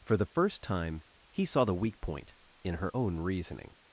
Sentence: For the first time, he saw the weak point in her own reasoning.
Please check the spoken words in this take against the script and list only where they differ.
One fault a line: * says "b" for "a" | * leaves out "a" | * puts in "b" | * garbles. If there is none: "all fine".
all fine